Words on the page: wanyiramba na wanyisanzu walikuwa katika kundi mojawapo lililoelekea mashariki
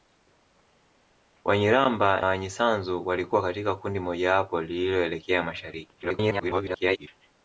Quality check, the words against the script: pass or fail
fail